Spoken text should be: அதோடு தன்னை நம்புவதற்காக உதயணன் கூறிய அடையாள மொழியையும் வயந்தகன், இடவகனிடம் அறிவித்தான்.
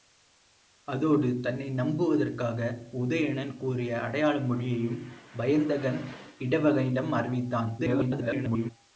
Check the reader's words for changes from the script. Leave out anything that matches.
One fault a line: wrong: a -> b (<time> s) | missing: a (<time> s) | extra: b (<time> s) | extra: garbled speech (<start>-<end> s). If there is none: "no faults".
extra: garbled speech (7.8-8.7 s)